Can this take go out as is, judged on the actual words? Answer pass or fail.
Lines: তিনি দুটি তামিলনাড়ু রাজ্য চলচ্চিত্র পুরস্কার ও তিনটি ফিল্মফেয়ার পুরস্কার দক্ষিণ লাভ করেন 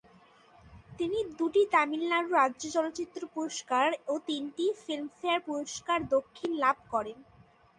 pass